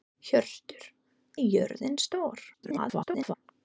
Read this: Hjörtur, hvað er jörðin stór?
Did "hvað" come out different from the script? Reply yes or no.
yes